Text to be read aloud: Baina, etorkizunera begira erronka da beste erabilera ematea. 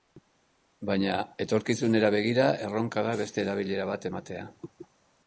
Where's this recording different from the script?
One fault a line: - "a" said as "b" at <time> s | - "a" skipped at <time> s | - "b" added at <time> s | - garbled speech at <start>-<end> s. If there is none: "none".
- "bat" added at 3.9 s